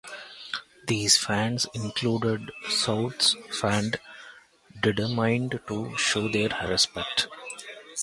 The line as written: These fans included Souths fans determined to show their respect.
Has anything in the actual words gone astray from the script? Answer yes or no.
no